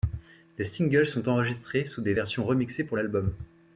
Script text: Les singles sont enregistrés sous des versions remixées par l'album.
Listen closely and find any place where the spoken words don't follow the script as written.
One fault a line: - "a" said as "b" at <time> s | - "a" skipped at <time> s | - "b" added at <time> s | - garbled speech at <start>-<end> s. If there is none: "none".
- "par" said as "pour" at 2.9 s